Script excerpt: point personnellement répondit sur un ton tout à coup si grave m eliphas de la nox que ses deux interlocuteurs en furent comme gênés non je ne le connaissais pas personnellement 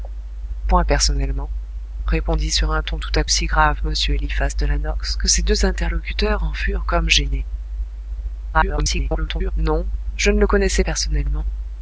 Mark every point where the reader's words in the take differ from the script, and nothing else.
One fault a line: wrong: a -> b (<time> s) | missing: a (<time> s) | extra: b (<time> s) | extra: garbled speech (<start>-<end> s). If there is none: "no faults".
missing: coup (3.2 s)
extra: garbled speech (8.5-9.5 s)
missing: pas (10.8 s)